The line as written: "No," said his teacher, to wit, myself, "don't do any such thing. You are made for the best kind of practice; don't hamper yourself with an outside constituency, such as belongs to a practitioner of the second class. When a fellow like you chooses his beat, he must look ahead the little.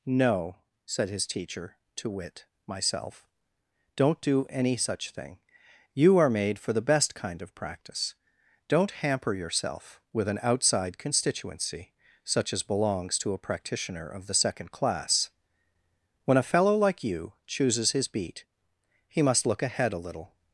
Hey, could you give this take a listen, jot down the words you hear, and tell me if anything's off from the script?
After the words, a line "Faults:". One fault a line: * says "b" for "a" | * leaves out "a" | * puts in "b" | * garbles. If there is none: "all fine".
"No," said his teacher, to wit, myself, "don't do any such thing. You are made for the best kind of practice; don't hamper yourself with an outside constituency, such as belongs to a practitioner of the second class. When a fellow like you chooses his beat, he must look ahead a little.
Faults:
* says "a" for "the"